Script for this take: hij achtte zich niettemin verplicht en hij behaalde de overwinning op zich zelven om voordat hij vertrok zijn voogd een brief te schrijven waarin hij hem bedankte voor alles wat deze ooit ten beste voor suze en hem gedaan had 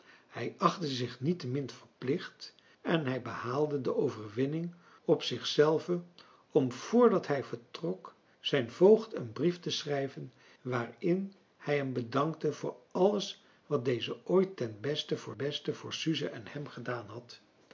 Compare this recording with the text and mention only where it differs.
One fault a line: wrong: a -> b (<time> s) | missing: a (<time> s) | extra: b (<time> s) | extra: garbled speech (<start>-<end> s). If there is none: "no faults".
extra: beste voor (15.4 s)